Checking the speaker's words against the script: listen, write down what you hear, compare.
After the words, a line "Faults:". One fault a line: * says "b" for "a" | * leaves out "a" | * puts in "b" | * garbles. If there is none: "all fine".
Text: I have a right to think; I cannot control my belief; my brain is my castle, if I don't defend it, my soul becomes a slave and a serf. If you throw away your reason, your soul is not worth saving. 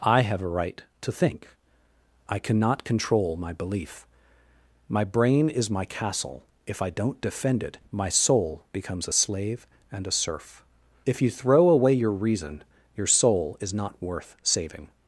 I have a right to think; I cannot control my belief; my brain is my castle, if I don't defend it, my soul becomes a slave and a serf. If you throw away your reason, your soul is not worth saving.
Faults:
all fine